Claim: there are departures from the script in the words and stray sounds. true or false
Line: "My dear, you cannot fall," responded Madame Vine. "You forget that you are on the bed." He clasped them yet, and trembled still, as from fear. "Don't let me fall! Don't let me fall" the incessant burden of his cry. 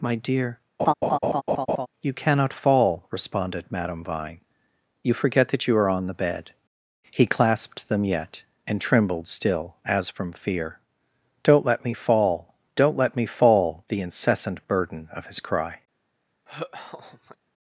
true